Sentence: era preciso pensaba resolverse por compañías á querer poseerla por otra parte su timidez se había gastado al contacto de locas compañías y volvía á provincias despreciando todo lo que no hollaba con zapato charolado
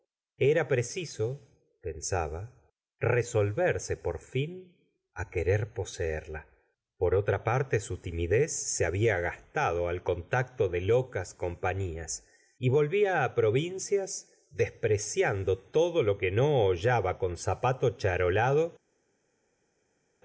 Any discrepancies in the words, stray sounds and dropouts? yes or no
yes